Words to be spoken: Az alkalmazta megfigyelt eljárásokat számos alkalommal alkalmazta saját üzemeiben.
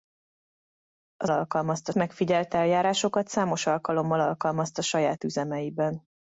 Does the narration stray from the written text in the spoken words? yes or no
no